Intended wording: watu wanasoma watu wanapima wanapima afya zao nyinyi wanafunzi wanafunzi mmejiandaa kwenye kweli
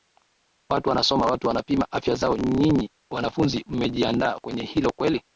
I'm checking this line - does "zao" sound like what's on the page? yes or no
yes